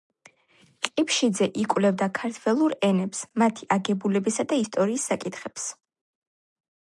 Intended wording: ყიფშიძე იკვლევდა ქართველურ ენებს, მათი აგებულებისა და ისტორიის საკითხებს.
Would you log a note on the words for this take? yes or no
no